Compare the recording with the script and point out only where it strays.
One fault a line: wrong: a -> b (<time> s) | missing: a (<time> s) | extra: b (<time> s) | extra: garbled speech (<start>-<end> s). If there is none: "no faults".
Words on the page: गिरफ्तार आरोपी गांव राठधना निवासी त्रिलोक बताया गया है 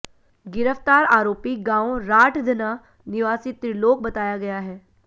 no faults